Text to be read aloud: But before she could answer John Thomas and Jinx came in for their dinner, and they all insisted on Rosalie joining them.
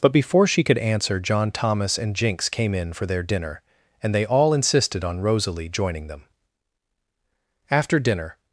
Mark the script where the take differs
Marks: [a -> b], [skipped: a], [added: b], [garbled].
But before she could answer John Thomas and Jinx came in for their dinner, and they all insisted on Rosalie joining them. [added: After dinner]